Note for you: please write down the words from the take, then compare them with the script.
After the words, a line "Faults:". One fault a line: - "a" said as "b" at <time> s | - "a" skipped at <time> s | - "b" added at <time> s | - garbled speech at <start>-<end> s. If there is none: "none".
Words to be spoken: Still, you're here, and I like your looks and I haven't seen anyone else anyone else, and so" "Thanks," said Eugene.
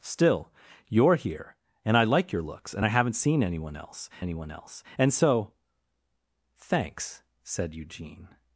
Still, you're here, and I like your looks and I haven't seen anyone else anyone else, and so" "Thanks," said Eugene.
Faults:
none